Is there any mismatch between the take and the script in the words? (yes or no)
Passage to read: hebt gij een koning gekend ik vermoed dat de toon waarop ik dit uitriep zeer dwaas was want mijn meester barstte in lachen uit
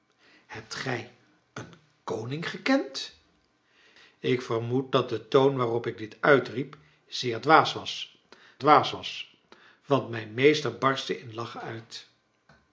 yes